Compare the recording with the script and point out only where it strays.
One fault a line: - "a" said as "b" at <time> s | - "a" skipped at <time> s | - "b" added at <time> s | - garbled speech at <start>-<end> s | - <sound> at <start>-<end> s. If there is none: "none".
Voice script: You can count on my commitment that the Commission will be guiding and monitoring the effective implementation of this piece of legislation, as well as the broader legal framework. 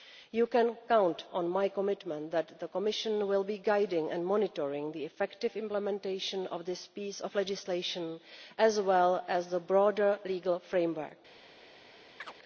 - chirp at 12.2-12.3 s